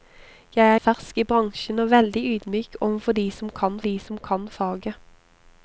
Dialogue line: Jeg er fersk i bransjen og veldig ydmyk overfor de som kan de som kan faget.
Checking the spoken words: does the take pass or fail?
pass